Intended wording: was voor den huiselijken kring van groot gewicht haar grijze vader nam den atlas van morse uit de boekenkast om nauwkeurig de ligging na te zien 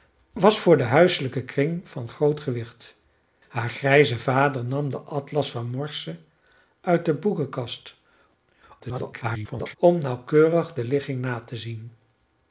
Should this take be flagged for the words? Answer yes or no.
yes